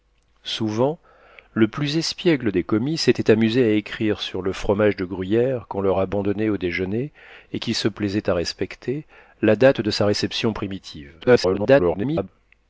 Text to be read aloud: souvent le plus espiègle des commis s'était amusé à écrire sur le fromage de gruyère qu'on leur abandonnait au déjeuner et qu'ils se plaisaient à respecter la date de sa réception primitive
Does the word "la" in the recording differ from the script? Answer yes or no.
no